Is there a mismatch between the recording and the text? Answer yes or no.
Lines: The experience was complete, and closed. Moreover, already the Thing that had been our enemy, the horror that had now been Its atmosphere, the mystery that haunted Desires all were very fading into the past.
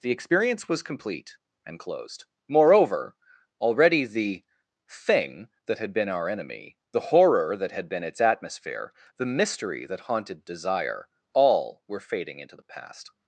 yes